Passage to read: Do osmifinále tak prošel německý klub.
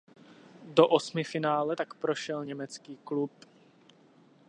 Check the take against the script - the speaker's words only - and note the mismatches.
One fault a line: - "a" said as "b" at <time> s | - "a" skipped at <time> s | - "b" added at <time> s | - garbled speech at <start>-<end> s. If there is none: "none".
none